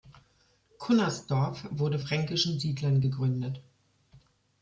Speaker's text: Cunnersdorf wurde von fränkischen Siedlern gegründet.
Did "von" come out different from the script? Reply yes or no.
yes